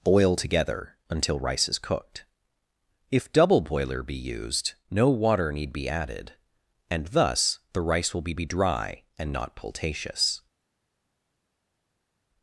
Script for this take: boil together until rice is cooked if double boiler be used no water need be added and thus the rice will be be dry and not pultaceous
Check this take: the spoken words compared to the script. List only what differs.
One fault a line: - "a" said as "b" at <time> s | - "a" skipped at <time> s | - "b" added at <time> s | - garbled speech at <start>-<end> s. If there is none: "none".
none